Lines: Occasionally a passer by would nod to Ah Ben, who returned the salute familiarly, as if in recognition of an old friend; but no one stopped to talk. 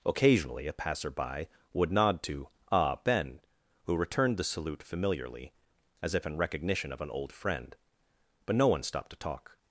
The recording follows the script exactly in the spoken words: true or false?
true